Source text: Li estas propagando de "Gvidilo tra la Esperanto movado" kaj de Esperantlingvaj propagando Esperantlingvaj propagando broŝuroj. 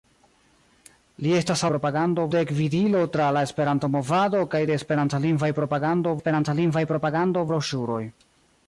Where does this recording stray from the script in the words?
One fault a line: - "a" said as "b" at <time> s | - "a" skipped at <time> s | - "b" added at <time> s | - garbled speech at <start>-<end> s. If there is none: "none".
none